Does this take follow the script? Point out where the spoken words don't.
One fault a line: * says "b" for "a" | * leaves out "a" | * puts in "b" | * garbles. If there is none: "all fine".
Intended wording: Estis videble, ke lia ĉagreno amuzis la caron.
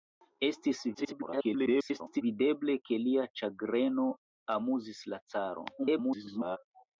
* garbles
* garbles